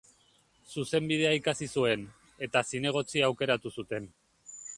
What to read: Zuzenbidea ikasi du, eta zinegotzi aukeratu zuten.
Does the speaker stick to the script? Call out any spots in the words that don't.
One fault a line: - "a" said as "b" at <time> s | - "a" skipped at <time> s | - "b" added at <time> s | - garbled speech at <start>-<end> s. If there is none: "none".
- "du" said as "zuen" at 1.8 s